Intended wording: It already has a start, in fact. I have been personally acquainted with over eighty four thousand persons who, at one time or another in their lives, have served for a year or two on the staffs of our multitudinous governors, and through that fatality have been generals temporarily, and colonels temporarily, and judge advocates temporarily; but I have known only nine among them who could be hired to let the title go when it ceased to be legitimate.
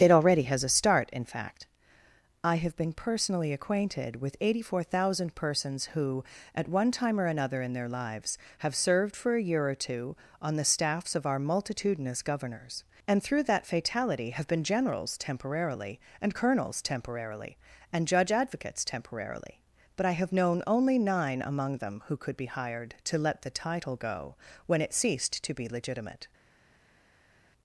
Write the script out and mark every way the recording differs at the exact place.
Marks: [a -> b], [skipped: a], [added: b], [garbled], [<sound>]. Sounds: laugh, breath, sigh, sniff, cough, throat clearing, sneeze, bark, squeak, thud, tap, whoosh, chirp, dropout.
It already has a start, in fact. I have been personally acquainted with [skipped: over] eighty four thousand persons who, at one time or another in their lives, have served for a year or two on the staffs of our multitudinous governors, and through that fatality have been generals temporarily, and colonels temporarily, and judge advocates temporarily; but I have known only nine among them who could be hired to let the title go when it ceased to be legitimate.